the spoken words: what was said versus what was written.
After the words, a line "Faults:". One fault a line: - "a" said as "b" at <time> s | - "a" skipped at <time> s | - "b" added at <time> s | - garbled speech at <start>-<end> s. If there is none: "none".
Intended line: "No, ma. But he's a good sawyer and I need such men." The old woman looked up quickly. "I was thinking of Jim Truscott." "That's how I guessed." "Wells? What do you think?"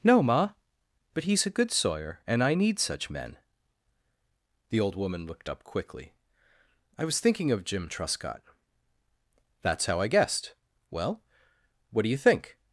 "No, ma. But he's a good sawyer and I need such men." The old woman looked up quickly. "I was thinking of Jim Truscott." "That's how I guessed." "Well? What do you think?"
Faults:
- "Wells" said as "Well" at 10.9 s